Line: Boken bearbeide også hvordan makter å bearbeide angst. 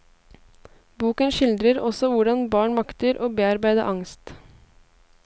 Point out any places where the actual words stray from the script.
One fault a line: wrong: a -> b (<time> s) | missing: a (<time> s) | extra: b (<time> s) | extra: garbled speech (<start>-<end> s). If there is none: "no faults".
wrong: bearbeide -> skildrer (1.4 s)
extra: barn (2.5 s)